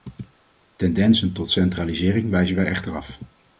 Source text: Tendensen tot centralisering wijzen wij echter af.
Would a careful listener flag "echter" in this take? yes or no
no